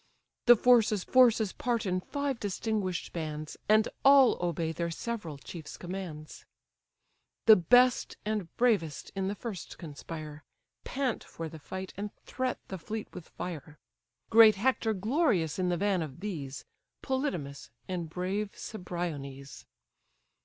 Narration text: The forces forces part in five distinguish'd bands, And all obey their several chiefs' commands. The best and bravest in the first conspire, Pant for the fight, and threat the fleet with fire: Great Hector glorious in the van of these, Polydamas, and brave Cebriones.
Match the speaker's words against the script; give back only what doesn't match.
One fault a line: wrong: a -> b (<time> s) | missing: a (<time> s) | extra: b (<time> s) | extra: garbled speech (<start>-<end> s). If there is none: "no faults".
no faults